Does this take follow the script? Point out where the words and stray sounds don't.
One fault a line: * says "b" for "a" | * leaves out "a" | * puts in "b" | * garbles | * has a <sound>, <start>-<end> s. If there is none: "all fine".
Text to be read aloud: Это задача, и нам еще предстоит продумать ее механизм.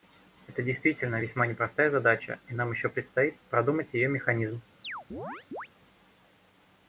* puts in "действительно весьма непростая"
* has a chirp, 4.8-5.7 s